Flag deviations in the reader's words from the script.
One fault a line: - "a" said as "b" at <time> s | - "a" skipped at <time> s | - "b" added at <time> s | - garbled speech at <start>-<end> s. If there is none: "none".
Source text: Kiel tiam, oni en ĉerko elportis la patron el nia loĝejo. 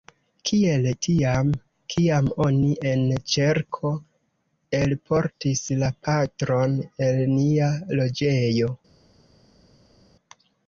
- "kiam" added at 1.9 s